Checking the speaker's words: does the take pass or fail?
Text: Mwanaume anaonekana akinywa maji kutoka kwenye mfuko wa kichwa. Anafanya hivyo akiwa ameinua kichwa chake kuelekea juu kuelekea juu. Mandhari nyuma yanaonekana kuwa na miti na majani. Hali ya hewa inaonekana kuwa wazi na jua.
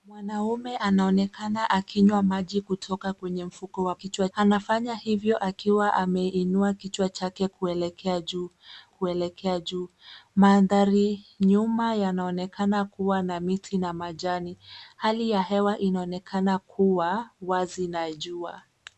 pass